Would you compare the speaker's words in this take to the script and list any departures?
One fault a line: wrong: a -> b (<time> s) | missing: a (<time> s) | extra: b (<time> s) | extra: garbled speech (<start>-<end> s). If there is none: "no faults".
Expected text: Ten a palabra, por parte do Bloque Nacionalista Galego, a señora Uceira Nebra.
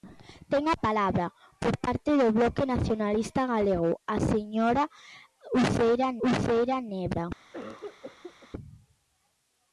extra: Uceira (6.3 s)